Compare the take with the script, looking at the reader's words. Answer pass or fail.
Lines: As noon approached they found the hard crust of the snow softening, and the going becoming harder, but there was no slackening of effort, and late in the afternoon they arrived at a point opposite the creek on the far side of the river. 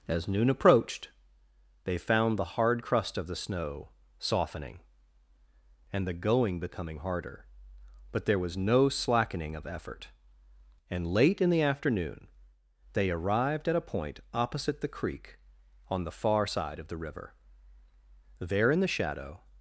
fail